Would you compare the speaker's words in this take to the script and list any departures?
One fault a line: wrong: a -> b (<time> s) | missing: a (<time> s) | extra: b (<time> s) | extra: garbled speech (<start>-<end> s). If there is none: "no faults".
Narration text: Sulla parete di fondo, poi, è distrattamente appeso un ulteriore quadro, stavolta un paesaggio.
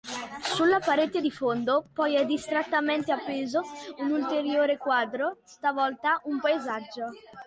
no faults